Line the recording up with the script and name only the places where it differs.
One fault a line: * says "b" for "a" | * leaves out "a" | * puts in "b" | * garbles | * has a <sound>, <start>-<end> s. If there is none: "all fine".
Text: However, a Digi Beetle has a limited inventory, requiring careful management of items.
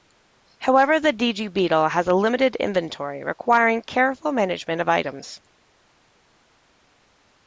* says "the" for "a"